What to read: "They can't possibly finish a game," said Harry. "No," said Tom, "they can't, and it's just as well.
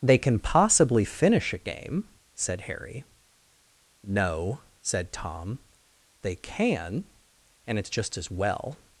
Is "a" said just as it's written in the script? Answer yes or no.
yes